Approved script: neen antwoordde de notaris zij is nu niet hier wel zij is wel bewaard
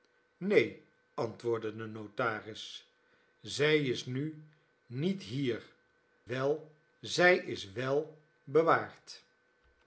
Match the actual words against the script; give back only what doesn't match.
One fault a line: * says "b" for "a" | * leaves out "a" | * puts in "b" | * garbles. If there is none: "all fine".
all fine